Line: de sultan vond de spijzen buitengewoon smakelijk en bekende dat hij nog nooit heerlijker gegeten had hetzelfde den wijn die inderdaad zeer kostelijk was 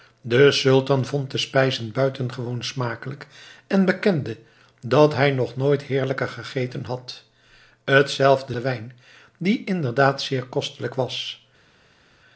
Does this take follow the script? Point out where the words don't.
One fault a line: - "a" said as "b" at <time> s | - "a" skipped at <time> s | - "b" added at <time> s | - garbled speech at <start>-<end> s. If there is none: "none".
none